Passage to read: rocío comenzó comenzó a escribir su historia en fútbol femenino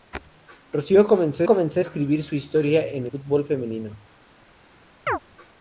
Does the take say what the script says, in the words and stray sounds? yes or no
no